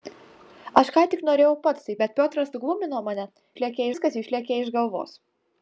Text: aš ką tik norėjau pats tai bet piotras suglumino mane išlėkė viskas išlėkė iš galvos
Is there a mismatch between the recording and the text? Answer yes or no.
no